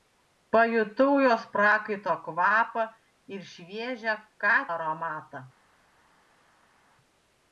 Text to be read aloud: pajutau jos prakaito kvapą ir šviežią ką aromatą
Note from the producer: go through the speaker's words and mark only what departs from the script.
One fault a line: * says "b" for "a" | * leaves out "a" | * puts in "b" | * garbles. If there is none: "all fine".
all fine